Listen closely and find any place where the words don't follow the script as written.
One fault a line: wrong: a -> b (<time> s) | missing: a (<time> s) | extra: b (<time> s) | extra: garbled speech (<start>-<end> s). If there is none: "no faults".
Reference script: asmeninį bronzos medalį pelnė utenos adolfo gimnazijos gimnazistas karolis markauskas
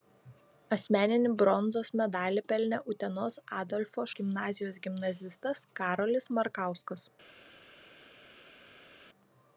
no faults